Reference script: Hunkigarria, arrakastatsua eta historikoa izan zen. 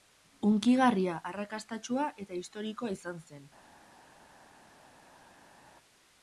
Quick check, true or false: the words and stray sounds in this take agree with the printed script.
true